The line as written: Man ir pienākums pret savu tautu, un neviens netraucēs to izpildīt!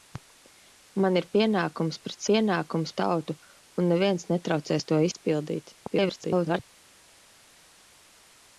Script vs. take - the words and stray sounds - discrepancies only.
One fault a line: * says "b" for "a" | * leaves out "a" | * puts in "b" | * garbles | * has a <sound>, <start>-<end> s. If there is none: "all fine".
* says "pienākums" for "savu"
* garbles